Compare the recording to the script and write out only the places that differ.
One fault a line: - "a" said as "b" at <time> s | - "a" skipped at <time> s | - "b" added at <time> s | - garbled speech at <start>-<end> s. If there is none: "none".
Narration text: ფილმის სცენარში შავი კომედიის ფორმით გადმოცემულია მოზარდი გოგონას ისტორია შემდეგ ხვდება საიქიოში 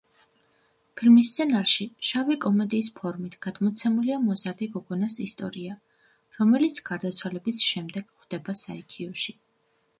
- "რომელიც გარდაცვალების" added at 6.4 s